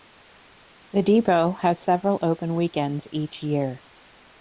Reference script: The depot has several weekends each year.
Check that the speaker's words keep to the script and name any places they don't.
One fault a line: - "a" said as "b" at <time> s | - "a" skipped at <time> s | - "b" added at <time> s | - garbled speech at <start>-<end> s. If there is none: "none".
- "open" added at 2.2 s